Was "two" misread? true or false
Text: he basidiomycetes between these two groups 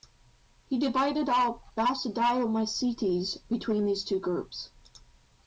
false